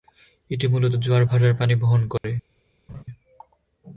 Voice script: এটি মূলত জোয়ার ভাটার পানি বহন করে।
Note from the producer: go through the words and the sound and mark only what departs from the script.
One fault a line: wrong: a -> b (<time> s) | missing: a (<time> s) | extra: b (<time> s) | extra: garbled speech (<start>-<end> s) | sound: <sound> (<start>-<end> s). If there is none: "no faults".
sound: dropout (2.2-2.2 s)
sound: laugh (2.9-3.0 s)